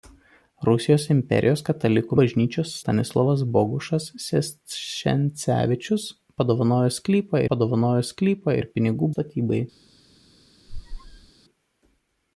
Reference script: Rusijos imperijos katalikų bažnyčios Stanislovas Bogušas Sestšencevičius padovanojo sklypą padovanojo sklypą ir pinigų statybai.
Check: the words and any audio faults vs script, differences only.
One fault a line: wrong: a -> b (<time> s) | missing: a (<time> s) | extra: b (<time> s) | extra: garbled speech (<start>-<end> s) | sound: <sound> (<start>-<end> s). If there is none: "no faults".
sound: squeak (10.7-11.3 s)